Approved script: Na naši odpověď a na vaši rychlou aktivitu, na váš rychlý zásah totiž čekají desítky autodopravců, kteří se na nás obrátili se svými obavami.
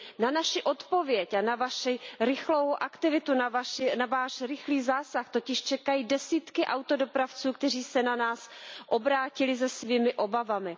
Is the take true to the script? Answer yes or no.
yes